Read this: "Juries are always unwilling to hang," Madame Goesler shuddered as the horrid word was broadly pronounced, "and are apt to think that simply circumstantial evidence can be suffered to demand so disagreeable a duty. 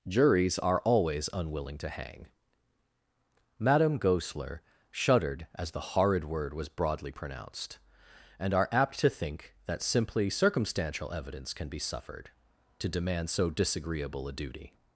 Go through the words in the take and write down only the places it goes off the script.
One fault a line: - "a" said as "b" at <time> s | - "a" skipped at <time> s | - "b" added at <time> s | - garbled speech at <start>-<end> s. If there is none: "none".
none